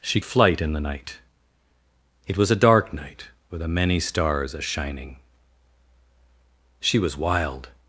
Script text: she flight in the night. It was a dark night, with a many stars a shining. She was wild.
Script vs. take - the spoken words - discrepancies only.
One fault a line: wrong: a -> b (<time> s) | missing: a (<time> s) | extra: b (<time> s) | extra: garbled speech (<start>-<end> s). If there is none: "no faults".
no faults